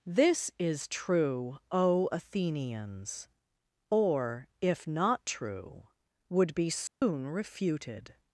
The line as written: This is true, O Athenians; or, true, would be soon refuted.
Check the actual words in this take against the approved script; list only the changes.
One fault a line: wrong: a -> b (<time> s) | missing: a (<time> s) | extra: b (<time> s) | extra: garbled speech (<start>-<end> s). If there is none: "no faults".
extra: if not (4.6 s)